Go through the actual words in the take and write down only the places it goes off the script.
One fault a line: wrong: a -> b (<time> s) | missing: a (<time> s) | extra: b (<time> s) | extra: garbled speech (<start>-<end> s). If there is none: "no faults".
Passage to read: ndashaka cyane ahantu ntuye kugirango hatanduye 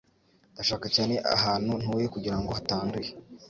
no faults